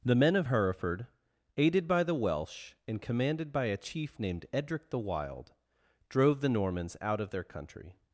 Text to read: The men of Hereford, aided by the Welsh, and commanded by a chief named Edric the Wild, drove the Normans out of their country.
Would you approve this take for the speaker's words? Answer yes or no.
yes